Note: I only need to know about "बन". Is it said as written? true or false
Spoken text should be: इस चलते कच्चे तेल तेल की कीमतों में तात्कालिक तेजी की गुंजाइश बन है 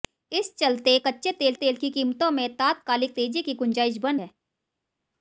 true